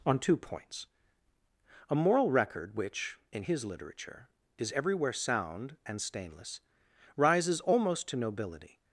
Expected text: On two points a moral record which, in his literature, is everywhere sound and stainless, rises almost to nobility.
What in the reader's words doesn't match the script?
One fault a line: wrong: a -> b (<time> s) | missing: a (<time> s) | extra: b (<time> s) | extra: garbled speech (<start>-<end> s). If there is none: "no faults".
no faults